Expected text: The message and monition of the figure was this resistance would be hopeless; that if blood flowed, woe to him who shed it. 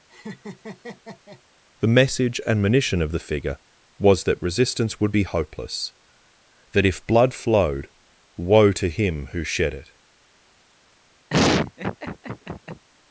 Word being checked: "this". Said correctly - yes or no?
no